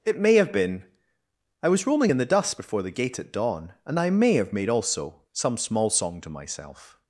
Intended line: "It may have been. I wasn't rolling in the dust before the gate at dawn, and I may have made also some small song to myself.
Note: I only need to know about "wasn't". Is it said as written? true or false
false